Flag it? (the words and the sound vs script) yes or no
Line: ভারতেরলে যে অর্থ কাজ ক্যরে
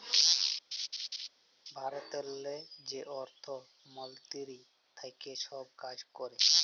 yes